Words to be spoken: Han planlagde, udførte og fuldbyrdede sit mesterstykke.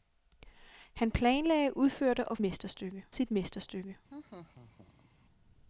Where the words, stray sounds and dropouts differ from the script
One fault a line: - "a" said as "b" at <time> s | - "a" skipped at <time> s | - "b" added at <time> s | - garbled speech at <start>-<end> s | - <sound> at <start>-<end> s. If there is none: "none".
- "fuldbyrdede" said as "mesterstykke" at 2.4 s
- laugh at 4.1-5.1 s